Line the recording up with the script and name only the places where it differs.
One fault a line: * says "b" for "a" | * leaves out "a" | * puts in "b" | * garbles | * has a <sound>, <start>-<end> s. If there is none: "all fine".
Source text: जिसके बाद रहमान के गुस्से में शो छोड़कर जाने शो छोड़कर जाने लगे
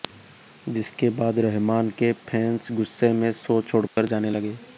* puts in "फैंस"
* has a dropout, 3.9-4.0 s
* leaves out "शो छोड़कर जाने"